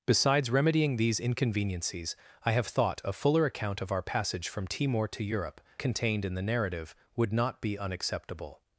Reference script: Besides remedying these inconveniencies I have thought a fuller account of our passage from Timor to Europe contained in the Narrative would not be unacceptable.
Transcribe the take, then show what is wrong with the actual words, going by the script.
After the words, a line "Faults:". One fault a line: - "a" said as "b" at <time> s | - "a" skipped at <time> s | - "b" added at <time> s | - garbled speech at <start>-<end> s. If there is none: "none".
Besides remedying these inconveniencies I have thought a fuller account of our passage from Timor to Europe contained in the Narrative would not be unacceptable.
Faults:
none